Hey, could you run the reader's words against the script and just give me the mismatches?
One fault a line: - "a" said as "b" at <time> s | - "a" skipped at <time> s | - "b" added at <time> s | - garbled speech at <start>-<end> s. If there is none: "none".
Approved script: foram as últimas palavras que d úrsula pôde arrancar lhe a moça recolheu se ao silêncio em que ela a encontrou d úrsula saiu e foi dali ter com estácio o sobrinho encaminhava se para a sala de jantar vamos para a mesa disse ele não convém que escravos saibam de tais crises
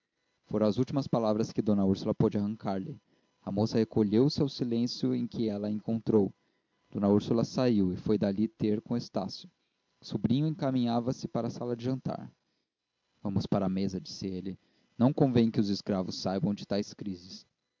- "os" added at 15.6 s